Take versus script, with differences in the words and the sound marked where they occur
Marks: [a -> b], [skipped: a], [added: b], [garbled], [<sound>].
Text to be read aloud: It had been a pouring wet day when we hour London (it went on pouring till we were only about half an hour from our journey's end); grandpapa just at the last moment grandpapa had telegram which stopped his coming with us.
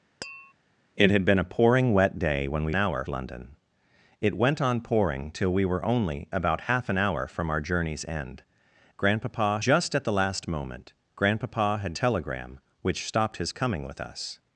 [tap] It had been a pouring wet day when we hour London (it went on pouring till we were only about half an hour from our journey's end); grandpapa just at the last moment grandpapa had telegram which stopped his coming with us.